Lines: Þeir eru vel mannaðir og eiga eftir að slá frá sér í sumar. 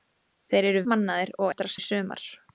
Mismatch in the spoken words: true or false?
true